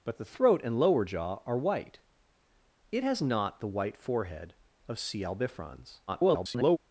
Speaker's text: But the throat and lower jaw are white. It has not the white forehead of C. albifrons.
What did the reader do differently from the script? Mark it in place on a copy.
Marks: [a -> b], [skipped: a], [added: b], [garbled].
But the throat and lower jaw are white. It has not the white forehead of C. albifrons. [garbled]